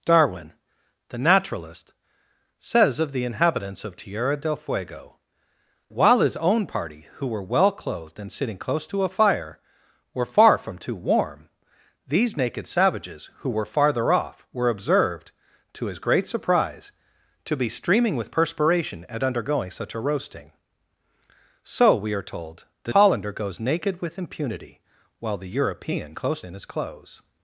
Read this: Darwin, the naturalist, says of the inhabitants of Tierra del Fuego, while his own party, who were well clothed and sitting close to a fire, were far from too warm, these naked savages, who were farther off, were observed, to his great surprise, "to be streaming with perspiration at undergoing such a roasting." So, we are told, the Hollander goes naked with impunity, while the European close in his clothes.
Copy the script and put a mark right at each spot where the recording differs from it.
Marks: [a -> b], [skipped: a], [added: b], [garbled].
Darwin, the naturalist, says of the inhabitants of Tierra del Fuego, while his own party, who were well clothed and sitting close to a fire, were far from too warm, these naked savages, who were farther off, were observed, to his great surprise, "to be streaming with perspiration at undergoing such a roasting." So, we are told, the Hollander goes naked with impunity, while the European close in his clothes.